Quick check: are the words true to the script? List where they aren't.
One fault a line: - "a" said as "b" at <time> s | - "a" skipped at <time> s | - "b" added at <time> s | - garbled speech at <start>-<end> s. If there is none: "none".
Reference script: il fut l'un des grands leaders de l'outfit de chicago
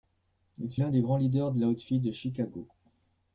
- "fut" skipped at 0.8 s